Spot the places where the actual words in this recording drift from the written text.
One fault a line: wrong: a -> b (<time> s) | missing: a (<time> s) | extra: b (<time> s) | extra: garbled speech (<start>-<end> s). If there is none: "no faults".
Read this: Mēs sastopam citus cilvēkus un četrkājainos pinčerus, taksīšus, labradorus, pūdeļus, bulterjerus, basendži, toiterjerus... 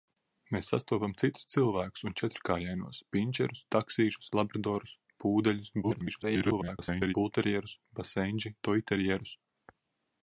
extra: garbled speech (5.8-7.1 s)